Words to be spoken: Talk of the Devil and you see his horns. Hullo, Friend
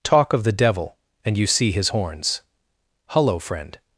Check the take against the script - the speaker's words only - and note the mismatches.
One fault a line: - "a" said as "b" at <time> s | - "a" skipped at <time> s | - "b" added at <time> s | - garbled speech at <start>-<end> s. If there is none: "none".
none